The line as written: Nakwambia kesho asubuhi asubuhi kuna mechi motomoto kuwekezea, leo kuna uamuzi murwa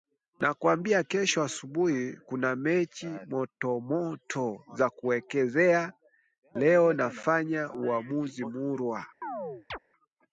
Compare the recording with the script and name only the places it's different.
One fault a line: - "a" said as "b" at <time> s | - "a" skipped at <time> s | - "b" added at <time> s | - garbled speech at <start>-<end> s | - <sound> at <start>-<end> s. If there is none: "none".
- "asubuhi" skipped at 2.1 s
- "za" added at 4.8 s
- "kuna" said as "nafanya" at 6.9 s
- chirp at 9.2-9.8 s